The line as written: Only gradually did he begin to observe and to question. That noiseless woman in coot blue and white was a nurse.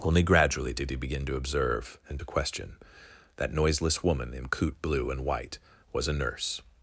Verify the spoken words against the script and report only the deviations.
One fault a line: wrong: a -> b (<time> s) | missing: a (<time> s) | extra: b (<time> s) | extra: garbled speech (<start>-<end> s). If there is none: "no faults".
no faults